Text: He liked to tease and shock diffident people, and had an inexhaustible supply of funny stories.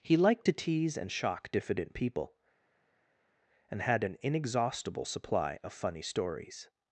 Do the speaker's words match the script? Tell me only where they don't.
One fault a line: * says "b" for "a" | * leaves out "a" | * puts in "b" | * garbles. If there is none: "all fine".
all fine